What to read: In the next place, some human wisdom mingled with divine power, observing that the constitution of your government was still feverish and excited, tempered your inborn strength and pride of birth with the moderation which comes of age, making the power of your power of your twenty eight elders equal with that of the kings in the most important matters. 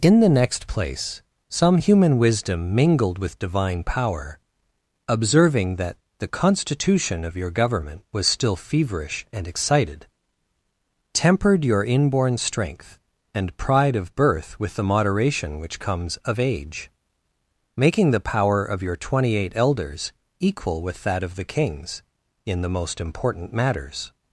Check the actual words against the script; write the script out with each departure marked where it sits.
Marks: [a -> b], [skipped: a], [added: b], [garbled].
In the next place, some human wisdom mingled with divine power, observing that the constitution of your government was still feverish and excited, tempered your inborn strength and pride of birth with the moderation which comes of age, making the power of your [skipped: power of your] twenty eight elders equal with that of the kings in the most important matters.